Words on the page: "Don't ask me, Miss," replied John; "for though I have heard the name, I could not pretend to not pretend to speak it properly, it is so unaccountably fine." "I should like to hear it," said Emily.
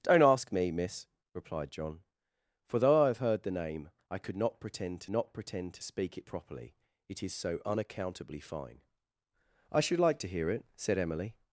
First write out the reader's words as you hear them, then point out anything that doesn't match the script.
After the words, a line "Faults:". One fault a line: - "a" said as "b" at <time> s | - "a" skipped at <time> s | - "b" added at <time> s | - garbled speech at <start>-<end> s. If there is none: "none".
"Don't ask me, Miss," replied John; "for though I have heard the name, I could not pretend to not pretend to speak it properly, it is so unaccountably fine." "I should like to hear it," said Emily.
Faults:
none